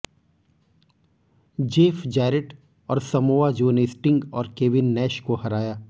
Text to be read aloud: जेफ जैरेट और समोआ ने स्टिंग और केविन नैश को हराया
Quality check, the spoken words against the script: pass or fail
fail